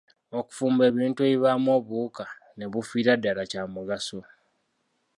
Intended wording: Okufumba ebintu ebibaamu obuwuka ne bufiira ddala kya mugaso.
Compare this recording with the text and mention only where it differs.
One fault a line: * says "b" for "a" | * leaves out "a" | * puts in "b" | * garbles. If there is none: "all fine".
all fine